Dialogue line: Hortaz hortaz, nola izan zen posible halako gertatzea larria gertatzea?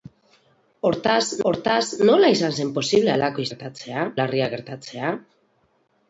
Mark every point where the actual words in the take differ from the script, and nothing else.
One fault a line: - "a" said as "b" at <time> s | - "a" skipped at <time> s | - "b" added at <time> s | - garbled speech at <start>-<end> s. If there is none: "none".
none